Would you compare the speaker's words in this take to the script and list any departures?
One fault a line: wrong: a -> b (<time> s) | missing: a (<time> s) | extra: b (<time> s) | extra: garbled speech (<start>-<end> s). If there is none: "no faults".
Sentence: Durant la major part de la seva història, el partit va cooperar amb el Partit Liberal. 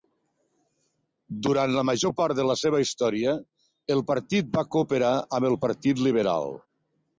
no faults